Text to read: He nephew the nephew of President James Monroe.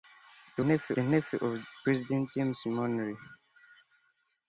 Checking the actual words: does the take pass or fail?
pass